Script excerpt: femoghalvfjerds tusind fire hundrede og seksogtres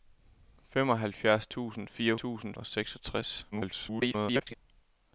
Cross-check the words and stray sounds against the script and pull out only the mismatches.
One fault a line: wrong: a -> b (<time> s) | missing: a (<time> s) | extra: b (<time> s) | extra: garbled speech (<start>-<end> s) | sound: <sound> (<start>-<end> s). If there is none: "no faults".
wrong: hundrede -> tusind (2.1 s)
extra: garbled speech (3.5-4.5 s)